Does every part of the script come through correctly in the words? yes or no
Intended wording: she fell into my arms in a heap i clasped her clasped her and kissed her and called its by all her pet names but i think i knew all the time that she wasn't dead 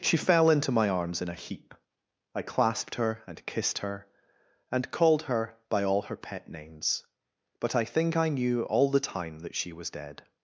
no